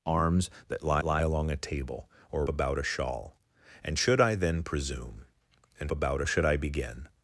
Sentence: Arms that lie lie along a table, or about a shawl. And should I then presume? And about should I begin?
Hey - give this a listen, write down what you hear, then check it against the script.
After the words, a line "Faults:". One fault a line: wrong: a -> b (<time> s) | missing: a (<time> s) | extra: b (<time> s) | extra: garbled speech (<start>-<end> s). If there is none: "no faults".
Arms that lie lie along a table, or about a shawl. And should I then presume? And about should I begin?
Faults:
no faults